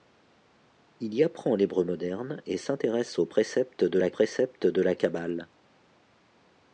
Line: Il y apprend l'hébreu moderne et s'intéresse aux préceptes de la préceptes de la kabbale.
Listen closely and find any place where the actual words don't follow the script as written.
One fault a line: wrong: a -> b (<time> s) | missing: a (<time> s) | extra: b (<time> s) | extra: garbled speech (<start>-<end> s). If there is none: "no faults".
no faults